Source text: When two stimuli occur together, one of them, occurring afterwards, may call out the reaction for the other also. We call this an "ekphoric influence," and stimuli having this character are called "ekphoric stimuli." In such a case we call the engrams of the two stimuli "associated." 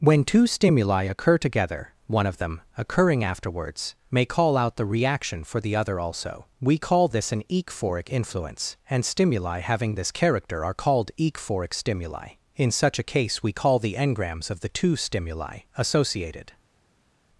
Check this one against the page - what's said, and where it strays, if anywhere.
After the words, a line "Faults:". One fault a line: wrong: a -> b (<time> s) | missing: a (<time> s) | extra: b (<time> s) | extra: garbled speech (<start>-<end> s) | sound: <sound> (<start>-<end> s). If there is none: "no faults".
When two stimuli occur together, one of them, occurring afterwards, may call out the reaction for the other also. We call this an "ekphoric influence," and stimuli having this character are called "ekphoric stimuli." In such a case we call the engrams of the two stimuli "associated."
Faults:
no faults